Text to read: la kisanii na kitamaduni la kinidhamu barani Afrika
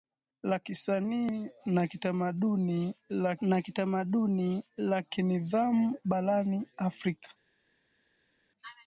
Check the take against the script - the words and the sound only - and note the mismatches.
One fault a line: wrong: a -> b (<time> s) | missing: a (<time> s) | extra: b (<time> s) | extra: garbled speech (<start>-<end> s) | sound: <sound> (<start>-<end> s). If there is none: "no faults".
extra: na kitamaduni la (3.4 s)